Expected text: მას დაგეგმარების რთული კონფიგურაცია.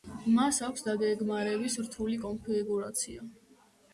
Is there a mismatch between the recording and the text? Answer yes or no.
yes